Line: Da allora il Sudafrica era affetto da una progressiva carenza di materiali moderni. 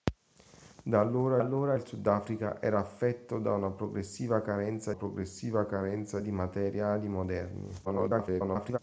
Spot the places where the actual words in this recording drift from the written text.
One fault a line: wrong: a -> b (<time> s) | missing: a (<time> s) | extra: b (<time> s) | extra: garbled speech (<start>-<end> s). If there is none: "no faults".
extra: allora (1.4 s)
extra: progressiva carenza (4.9 s)
extra: garbled speech (7.8-8.8 s)